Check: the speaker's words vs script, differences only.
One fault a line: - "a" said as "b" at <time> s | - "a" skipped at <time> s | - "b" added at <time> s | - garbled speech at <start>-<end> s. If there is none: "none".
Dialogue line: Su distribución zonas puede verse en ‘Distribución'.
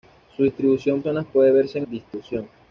none